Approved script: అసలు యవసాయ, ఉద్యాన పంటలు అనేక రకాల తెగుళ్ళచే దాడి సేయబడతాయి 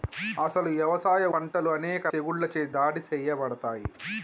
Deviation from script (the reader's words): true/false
true